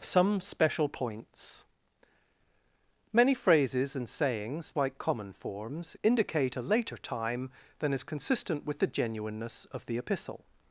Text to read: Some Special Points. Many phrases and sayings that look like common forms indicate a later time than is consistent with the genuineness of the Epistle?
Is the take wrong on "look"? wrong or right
wrong